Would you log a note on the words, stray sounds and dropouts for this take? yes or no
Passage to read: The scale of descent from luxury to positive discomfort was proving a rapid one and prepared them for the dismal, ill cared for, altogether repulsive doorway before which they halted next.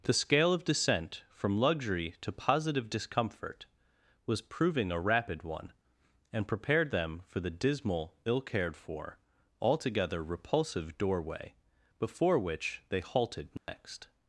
yes